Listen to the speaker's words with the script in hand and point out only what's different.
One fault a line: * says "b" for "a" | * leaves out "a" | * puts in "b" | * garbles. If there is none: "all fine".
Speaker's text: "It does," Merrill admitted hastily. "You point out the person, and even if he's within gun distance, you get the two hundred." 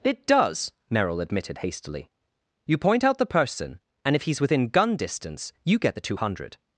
* leaves out "even"